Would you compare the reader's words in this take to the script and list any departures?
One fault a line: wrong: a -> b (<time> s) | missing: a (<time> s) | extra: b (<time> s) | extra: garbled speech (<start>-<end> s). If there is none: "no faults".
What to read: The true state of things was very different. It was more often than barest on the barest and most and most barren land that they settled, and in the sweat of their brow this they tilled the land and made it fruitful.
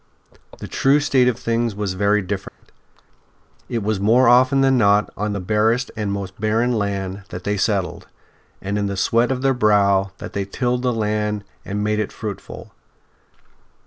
wrong: barest -> not (4.8 s)
missing: and most (6.4 s)
wrong: this -> that (10.2 s)